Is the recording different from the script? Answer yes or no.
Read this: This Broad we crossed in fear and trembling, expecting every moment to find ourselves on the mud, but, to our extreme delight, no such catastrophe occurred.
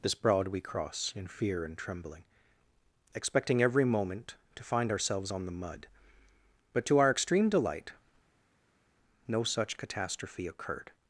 yes